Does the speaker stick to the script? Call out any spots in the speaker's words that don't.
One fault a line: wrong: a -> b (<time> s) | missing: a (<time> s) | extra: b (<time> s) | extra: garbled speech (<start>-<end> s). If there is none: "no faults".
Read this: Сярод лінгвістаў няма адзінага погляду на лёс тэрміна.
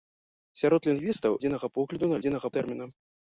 missing: няма (1.4 s)
wrong: лёс -> адзінага (2.2 s)